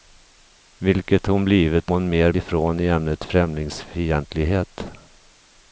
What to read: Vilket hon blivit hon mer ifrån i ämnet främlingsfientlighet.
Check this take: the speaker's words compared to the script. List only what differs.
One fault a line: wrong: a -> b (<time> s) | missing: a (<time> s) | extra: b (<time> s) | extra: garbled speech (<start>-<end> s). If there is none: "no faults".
no faults